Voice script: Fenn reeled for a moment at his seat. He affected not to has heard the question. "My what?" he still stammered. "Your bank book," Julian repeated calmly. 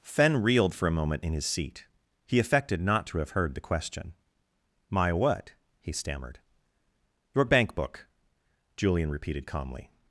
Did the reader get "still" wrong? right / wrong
wrong